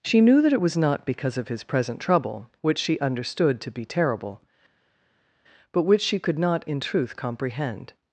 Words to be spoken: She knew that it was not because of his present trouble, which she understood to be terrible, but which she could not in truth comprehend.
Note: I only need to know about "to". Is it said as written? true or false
true